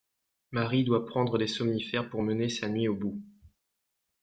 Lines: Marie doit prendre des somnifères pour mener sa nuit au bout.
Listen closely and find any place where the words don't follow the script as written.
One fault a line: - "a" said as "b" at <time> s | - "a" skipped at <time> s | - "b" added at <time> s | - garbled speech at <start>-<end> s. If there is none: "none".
none